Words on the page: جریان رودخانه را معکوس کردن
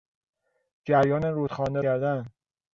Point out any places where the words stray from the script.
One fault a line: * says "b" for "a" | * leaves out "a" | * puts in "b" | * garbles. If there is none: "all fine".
* leaves out "را معکوس"